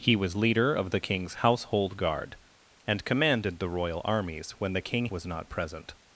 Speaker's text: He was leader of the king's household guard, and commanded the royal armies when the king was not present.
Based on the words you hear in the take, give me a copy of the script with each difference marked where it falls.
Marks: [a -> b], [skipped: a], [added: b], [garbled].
He was leader of the king's household guard, and commanded the royal armies when the king was not present.